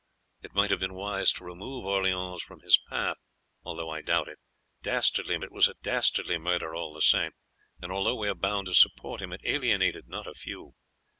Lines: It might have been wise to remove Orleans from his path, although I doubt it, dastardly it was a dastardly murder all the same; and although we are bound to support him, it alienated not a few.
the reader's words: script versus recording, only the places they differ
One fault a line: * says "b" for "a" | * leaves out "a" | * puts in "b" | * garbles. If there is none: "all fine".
all fine